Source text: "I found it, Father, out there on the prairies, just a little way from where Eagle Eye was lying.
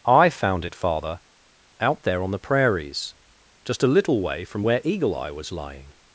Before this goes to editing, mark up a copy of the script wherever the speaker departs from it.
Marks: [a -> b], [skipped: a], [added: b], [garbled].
"I found it, Father, out there on the prairies, just a little way from where Eagle Eye was lying.